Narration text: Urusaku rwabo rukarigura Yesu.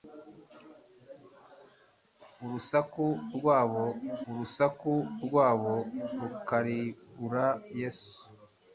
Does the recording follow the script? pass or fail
fail